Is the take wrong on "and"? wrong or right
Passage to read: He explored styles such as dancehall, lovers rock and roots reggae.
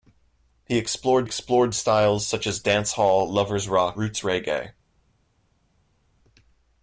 wrong